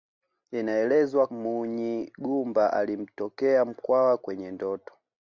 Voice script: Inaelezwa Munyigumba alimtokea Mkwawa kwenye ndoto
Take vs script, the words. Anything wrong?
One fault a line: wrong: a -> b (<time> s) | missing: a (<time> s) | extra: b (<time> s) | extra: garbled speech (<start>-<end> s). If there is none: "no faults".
no faults